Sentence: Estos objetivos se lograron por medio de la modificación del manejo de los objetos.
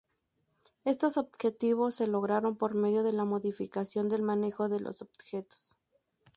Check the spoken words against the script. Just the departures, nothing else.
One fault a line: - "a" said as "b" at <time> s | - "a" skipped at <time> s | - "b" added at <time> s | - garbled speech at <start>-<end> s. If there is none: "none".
none